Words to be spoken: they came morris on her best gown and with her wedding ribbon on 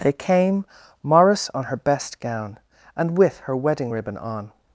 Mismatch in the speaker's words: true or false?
false